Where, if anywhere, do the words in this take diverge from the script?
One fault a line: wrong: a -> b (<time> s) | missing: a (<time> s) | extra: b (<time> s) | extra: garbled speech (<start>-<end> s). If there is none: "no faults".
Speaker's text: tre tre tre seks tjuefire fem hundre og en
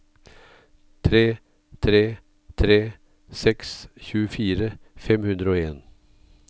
no faults